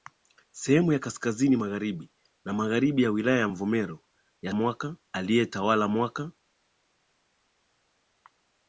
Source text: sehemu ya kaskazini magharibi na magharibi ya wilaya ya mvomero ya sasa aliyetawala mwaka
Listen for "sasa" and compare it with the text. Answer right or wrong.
wrong